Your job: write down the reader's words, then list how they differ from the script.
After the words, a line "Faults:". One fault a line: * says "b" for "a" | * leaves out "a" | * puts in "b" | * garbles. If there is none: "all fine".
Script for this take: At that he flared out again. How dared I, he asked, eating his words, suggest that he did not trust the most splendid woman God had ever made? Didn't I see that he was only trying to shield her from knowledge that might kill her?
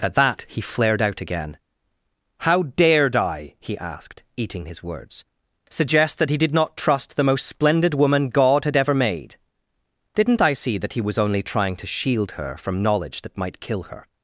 At that he flared out again. How dared I, he asked, eating his words, suggest that he did not trust the most splendid woman God had ever made? Didn't I see that he was only trying to shield her from knowledge that might kill her?
Faults:
all fine